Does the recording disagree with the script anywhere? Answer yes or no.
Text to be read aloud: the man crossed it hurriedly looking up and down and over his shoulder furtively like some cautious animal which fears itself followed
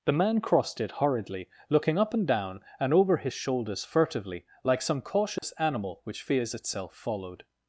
yes